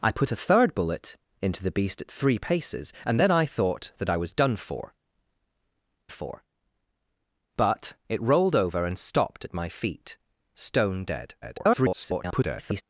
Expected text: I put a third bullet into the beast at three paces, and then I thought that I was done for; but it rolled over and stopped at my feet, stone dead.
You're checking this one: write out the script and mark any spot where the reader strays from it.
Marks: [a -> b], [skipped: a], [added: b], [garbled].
I put a third bullet into the beast at three paces, and then I thought that I was done for; [added: for] but it rolled over and stopped at my feet, stone dead. [garbled]